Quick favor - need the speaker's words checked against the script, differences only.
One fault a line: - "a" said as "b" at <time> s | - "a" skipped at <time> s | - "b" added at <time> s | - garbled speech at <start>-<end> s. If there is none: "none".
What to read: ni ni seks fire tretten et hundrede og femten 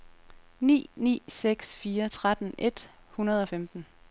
none